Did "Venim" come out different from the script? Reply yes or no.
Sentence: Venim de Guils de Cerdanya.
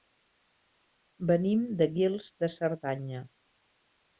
no